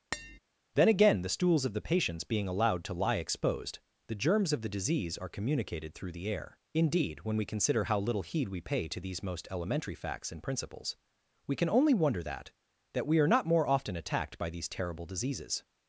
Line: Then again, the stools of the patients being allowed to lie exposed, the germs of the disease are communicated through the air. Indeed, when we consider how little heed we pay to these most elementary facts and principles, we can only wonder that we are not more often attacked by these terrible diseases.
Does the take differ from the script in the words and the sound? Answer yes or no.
yes